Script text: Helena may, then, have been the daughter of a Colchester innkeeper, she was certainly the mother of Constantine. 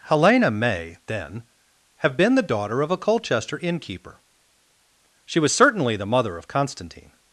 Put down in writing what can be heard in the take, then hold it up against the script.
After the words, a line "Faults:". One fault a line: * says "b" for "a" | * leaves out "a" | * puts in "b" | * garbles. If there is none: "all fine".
Helena may, then, have been the daughter of a Colchester innkeeper, she was certainly the mother of Constantine.
Faults:
all fine